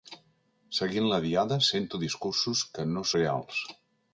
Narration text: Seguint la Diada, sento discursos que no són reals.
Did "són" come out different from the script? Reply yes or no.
yes